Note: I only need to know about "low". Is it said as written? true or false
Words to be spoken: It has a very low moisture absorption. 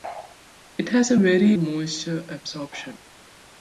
false